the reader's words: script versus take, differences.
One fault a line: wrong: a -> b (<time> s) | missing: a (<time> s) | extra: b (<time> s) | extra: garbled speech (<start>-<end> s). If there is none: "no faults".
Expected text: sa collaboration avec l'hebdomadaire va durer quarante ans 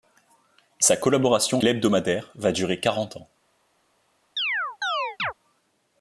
missing: avec (1.6 s)